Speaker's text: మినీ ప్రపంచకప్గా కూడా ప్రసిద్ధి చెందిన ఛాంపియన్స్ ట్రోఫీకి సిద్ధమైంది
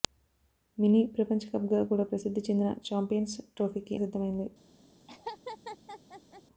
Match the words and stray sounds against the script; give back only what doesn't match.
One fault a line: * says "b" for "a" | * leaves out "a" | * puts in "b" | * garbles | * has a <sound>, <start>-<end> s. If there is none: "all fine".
* has a laugh, 5.1-6.4 s